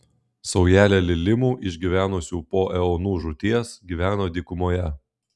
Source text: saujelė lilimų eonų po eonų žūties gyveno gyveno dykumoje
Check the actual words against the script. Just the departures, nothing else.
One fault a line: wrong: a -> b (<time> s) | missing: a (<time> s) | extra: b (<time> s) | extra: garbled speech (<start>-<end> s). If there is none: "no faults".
wrong: eonų -> išgyvenusių (1.7 s)
missing: gyveno (4.3 s)